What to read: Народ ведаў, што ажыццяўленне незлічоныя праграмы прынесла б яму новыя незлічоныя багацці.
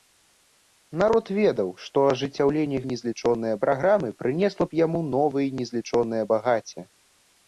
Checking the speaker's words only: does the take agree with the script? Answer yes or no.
yes